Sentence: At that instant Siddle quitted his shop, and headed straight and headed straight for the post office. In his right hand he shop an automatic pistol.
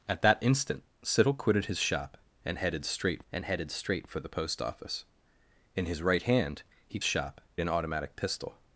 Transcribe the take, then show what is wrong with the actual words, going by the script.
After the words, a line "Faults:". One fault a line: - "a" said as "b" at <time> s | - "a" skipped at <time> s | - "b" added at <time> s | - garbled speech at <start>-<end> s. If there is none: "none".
At that instant Siddle quitted his shop, and headed straight and headed straight for the post office. In his right hand he shop an automatic pistol.
Faults:
none